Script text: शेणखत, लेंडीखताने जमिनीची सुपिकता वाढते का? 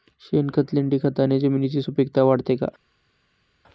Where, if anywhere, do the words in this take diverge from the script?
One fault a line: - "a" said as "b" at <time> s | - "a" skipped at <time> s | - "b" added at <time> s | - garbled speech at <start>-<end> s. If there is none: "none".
none